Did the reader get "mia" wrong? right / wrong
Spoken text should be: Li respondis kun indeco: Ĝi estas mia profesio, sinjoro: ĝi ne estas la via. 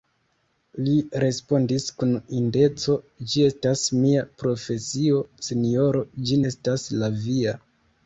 right